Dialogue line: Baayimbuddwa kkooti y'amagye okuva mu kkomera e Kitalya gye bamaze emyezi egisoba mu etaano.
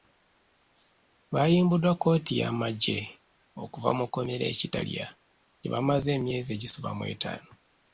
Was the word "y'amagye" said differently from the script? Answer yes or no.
no